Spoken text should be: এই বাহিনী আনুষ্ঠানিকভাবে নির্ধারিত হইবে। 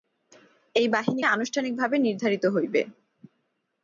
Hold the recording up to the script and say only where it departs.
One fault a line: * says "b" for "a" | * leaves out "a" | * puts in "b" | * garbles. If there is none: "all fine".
all fine